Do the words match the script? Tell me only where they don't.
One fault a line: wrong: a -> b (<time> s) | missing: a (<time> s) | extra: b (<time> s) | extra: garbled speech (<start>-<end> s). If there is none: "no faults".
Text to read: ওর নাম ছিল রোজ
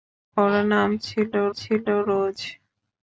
extra: ছিল (1.5 s)